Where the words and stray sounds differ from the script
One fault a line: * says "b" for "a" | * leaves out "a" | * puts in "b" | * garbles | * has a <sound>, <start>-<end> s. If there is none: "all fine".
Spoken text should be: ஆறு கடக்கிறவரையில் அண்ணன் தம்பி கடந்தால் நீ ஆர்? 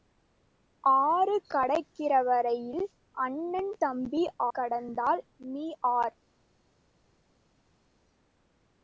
all fine